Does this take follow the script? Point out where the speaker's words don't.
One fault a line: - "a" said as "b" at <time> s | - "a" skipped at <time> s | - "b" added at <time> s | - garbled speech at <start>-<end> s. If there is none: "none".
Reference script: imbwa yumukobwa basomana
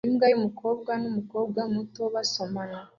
- "numukobwa muto" added at 1.0 s